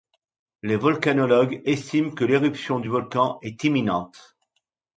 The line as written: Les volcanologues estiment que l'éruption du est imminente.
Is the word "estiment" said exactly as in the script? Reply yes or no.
yes